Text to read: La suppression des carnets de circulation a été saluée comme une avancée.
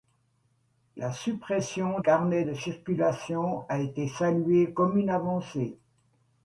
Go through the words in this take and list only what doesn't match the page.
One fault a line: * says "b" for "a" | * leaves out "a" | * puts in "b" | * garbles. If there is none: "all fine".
* leaves out "des"